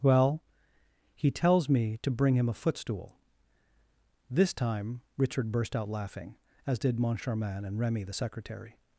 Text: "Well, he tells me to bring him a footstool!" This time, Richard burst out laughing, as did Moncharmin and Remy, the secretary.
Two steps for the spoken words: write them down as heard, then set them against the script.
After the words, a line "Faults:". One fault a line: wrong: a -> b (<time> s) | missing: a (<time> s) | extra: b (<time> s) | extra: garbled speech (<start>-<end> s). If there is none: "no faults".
"Well, he tells me to bring him a footstool!" This time, Richard burst out laughing, as did Moncharmin and Remy, the secretary.
Faults:
no faults